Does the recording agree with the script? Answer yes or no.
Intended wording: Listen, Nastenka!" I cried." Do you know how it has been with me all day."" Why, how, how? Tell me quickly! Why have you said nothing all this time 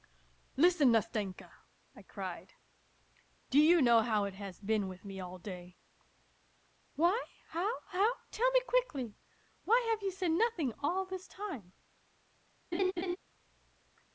yes